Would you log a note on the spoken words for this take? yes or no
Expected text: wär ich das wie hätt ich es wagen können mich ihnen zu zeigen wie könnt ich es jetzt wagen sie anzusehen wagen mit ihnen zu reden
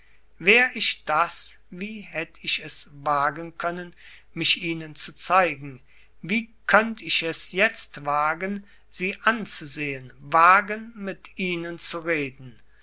no